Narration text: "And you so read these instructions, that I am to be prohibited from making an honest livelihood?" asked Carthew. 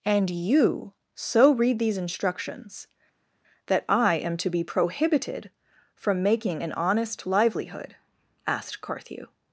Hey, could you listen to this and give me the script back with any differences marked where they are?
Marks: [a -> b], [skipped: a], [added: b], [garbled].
"And you so read these instructions, that I am to be prohibited from making an honest livelihood?" asked Carthew.